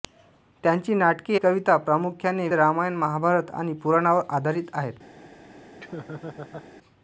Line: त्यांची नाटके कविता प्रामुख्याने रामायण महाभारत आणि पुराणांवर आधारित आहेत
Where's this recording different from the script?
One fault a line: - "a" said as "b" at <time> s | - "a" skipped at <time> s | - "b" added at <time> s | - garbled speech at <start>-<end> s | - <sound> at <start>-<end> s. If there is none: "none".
- laugh at 5.8-6.7 s